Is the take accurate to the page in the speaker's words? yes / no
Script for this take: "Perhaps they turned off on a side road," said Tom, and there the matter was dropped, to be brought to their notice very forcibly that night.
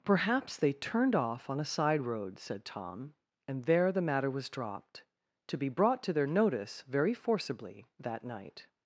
yes